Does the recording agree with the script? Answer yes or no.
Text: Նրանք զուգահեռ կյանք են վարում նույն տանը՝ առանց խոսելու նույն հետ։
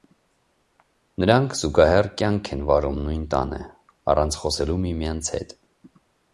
no